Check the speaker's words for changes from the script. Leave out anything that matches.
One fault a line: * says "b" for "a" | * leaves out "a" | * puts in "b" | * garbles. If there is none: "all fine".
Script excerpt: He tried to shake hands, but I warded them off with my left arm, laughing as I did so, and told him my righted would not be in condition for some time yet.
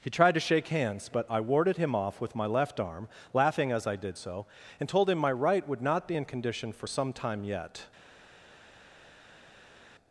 * says "him" for "them"
* says "right" for "righted"